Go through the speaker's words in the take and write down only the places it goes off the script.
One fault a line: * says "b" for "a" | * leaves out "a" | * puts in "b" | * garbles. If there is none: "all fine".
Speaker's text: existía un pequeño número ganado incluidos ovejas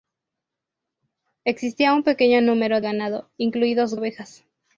all fine